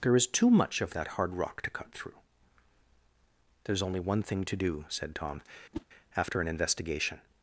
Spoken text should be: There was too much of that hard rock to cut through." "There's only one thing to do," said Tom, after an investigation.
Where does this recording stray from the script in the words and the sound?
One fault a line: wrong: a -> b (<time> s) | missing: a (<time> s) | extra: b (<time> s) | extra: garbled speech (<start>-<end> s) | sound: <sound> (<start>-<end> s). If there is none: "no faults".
wrong: was -> is (0.1 s)
sound: whoosh (5.7-5.9 s)